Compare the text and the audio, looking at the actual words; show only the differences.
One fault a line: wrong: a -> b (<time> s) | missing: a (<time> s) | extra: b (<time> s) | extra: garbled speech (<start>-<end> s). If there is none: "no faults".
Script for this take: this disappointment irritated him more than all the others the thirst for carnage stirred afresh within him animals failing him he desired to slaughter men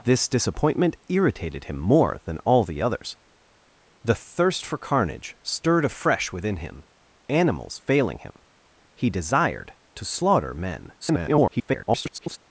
extra: garbled speech (11.0-12.4 s)